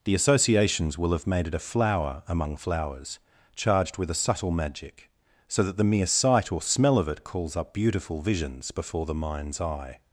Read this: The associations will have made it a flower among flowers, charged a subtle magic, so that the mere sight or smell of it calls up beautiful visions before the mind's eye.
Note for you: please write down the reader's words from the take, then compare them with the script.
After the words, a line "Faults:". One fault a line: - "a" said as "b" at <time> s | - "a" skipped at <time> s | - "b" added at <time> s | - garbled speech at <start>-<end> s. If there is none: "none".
The associations will have made it a flower among flowers, charged with a subtle magic, so that the mere sight or smell of it calls up beautiful visions before the mind's eye.
Faults:
- "with" added at 4.0 s